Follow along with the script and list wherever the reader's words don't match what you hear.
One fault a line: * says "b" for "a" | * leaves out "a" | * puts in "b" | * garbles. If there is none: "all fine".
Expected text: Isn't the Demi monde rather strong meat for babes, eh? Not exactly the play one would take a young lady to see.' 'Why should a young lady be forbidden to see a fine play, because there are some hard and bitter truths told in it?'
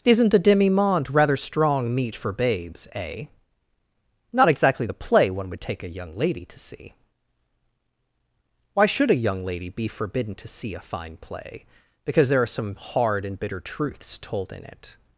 all fine